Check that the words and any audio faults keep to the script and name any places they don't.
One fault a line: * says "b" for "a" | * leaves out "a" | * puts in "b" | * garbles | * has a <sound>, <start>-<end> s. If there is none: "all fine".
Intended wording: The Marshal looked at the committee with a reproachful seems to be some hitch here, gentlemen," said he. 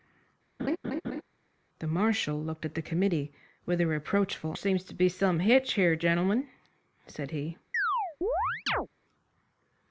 * has a laugh, 0.6-1.2 s
* has a chirp, 7.7-8.9 s